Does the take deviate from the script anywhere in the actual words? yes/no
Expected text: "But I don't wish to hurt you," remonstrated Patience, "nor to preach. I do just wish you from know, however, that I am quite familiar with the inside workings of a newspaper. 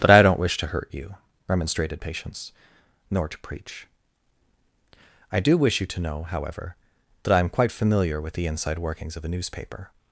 yes